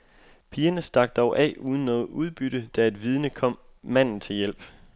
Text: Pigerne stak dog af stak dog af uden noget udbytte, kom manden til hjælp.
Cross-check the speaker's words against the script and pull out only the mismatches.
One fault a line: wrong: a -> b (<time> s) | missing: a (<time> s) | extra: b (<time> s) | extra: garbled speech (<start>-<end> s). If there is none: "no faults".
wrong: stak dog af uden noget udbytte -> uden noget udbytte da et vidne (1.6 s)